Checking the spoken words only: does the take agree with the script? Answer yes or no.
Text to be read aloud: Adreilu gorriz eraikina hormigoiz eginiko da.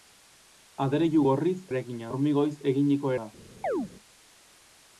yes